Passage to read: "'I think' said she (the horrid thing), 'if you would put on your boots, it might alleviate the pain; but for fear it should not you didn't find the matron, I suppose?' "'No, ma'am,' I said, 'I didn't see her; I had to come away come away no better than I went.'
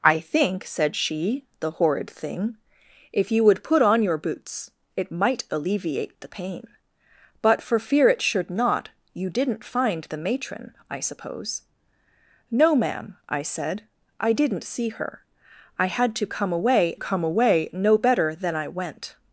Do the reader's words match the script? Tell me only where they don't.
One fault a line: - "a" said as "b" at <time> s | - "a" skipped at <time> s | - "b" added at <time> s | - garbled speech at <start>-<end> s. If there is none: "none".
none